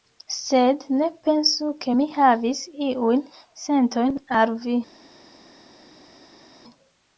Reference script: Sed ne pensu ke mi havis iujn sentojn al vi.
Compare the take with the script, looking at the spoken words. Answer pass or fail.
pass